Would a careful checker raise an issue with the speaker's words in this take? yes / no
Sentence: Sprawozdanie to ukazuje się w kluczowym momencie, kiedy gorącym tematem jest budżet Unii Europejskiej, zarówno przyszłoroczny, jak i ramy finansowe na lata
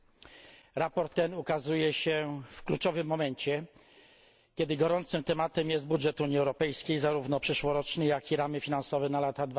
no